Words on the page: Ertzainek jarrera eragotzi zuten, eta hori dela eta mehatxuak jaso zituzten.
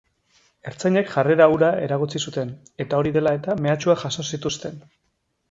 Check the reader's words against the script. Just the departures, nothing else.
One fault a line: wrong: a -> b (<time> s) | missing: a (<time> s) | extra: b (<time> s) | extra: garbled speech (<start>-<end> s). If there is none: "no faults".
extra: hura (1.6 s)